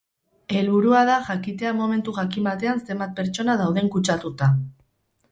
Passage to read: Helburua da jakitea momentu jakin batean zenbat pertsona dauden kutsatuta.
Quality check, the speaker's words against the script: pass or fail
pass